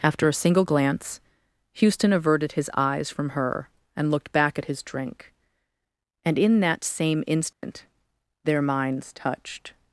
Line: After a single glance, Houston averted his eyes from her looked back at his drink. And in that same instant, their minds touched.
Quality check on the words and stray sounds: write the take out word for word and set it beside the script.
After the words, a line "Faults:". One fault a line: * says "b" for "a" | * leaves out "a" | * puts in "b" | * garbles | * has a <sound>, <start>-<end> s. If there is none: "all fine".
After a single glance, Houston averted his eyes from her and looked back at his drink. And in that same instant, their minds touched.
Faults:
* puts in "and"
* has a dropout, 7.5-7.6 s